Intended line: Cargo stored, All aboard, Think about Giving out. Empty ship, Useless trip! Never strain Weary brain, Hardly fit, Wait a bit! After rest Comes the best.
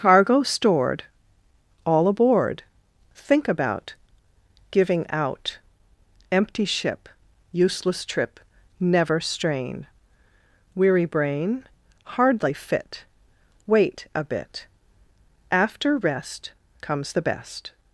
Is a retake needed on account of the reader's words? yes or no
no